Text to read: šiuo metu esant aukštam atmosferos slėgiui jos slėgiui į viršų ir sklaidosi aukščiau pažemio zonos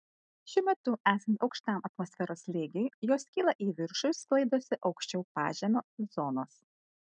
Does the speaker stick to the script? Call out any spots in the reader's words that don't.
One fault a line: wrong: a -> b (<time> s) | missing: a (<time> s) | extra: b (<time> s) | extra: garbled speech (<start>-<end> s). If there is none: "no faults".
wrong: slėgiui -> kyla (3.4 s)